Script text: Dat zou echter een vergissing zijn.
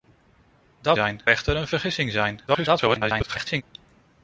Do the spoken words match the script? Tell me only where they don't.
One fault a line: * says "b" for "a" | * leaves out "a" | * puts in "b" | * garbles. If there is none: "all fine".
* says "zijn" for "zou"
* garbles